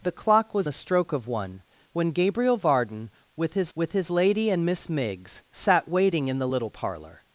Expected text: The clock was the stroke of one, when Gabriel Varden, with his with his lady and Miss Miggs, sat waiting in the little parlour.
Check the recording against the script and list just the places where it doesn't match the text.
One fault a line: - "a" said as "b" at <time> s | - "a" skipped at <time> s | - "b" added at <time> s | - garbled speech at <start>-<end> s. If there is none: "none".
none